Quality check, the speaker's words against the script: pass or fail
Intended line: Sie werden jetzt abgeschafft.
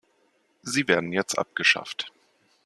pass